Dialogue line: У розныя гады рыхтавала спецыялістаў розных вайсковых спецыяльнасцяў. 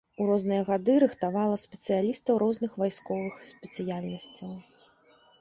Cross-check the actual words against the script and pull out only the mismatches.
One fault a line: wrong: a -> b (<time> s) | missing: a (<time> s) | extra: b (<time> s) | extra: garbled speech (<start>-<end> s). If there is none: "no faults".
no faults